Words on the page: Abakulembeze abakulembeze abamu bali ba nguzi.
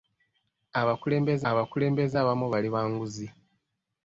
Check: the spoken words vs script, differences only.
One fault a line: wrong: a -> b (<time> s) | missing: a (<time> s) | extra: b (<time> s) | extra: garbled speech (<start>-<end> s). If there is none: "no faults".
no faults